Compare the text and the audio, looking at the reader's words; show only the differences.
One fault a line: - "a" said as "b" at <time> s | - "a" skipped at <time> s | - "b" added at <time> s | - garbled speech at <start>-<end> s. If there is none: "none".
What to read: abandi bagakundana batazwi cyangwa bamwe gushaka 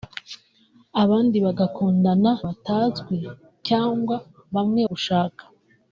none